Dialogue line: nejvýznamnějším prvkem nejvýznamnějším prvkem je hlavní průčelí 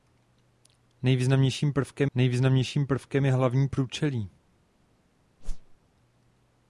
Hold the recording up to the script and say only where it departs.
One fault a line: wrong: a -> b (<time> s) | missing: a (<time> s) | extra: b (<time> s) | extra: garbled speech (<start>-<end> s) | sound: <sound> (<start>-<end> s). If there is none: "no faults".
sound: whoosh (5.4-5.8 s)